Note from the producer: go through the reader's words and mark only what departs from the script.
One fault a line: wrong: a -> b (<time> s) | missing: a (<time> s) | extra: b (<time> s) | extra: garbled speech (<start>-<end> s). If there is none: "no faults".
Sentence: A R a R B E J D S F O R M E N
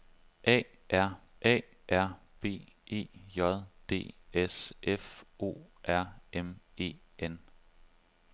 no faults